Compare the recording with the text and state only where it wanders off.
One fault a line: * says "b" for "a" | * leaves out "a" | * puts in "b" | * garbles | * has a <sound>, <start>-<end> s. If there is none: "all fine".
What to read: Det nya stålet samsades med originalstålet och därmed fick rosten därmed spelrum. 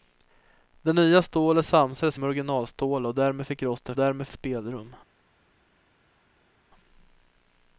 all fine